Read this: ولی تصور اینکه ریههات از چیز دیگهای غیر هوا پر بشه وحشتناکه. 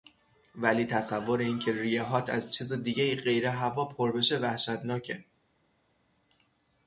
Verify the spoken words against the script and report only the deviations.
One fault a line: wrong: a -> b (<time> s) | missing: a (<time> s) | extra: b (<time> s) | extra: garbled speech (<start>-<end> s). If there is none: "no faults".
no faults